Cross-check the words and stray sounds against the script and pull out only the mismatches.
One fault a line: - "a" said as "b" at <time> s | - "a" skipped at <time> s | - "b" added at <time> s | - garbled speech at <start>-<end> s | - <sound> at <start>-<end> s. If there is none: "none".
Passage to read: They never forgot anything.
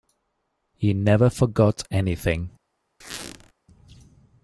- "They" said as "He" at 0.7 s
- squeak at 3.0-3.5 s